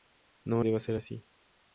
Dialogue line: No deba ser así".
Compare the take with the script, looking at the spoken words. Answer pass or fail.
pass